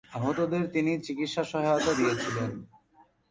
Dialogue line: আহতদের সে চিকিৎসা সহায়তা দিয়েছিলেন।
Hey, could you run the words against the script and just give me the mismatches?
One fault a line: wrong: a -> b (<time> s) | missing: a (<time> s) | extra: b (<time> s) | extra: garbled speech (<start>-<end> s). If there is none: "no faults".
wrong: সে -> তিনি (0.7 s)